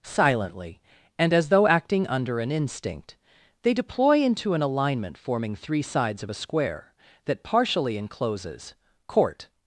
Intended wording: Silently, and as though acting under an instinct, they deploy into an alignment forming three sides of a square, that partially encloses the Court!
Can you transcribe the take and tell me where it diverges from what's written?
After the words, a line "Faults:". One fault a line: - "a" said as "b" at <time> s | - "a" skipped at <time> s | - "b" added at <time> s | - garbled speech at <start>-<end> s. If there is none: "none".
Silently, and as though acting under an instinct, they deploy into an alignment forming three sides of a square, that partially encloses Court!
Faults:
- "the" skipped at 8.8 s